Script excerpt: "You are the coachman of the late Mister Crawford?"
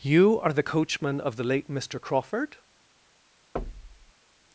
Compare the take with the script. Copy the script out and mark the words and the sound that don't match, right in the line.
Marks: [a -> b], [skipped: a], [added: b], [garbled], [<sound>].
"You are the coachman of the late Mister Crawford?" [thud]